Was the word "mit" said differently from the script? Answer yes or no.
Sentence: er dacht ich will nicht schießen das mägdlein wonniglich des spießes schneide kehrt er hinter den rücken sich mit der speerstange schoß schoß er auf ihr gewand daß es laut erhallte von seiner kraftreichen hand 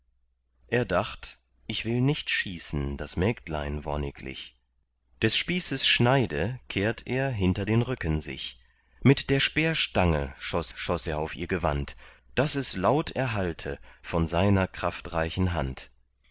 no